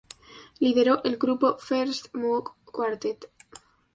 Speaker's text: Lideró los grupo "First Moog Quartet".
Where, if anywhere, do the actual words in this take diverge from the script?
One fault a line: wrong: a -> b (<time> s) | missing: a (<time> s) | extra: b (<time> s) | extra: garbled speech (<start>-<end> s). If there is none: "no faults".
wrong: los -> el (1.0 s)